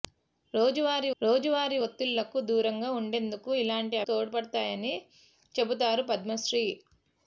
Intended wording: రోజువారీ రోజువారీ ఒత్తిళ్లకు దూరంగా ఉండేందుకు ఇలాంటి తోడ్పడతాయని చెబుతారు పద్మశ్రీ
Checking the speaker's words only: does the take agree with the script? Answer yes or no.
yes